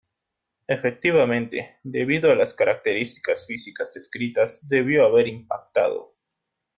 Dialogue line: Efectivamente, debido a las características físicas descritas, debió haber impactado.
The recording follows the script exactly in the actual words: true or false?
true